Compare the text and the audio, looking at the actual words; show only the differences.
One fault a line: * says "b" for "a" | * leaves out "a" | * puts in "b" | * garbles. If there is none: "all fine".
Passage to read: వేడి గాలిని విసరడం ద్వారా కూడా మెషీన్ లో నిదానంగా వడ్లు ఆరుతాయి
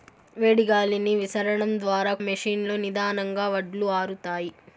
* leaves out "కూడా"